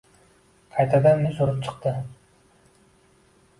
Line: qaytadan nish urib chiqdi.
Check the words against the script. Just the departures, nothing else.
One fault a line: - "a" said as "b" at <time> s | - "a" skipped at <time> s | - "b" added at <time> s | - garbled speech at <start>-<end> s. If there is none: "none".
none